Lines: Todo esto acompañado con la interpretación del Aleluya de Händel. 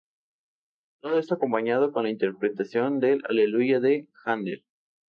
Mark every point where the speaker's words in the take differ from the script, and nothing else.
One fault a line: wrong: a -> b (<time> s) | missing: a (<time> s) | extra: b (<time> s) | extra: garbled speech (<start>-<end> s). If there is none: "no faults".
no faults